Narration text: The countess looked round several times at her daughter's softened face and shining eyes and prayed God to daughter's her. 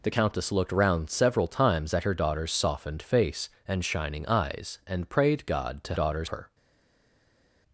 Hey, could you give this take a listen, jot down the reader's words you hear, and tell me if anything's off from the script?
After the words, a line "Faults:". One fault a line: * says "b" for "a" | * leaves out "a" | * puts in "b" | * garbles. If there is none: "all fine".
The countess looked round several times at her daughter's softened face and shining eyes and prayed God to daughter's her.
Faults:
all fine